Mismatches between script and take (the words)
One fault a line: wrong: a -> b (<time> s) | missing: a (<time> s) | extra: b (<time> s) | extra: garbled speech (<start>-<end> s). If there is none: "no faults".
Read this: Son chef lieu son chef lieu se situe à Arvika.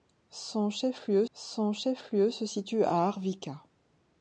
no faults